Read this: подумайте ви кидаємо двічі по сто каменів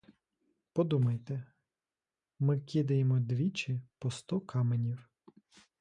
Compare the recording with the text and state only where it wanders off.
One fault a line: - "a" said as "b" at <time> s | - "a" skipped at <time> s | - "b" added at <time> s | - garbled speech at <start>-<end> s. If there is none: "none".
- "ви" said as "ми" at 2.4 s